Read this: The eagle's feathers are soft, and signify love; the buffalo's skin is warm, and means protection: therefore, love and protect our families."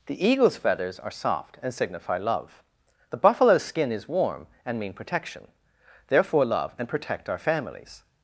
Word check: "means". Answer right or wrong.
wrong